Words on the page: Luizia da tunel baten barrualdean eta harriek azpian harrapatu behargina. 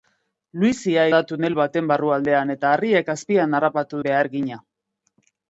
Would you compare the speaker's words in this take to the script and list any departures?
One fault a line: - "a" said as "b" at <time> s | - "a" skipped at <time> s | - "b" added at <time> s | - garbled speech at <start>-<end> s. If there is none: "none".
none